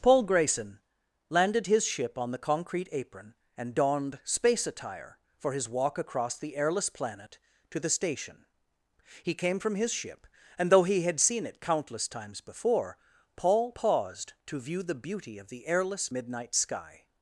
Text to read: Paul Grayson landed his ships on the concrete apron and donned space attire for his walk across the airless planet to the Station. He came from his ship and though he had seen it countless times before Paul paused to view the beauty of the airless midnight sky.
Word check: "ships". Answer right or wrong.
wrong